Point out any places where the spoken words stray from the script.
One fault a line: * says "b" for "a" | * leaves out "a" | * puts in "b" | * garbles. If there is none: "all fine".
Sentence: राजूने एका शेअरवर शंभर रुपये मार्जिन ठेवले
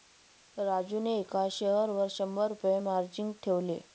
all fine